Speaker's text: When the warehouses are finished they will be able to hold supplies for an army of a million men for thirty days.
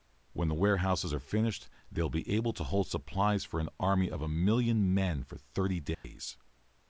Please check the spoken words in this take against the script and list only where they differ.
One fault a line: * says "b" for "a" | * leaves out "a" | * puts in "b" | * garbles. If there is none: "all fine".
all fine